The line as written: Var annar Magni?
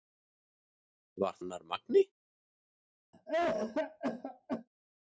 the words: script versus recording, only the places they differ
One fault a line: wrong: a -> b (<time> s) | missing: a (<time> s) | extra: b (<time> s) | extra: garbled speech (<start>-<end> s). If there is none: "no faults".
no faults